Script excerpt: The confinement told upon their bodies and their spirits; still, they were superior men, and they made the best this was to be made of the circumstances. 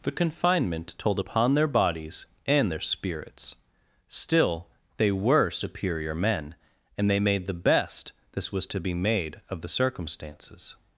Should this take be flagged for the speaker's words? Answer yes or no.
no